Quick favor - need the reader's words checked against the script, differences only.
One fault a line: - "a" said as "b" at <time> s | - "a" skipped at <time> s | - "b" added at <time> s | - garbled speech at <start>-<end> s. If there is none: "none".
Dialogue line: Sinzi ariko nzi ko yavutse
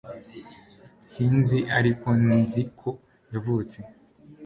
none